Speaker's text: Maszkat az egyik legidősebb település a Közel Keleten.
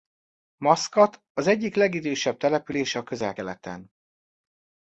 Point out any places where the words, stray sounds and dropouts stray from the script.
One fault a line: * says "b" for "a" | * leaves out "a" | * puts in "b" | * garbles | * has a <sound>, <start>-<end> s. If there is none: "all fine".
all fine